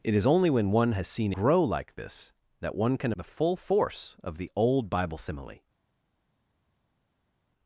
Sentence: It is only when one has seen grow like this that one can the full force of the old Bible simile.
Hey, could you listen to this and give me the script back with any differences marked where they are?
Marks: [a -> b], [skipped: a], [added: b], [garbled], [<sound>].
It is only when one has seen grow like this that one can the full force of the old Bible simile.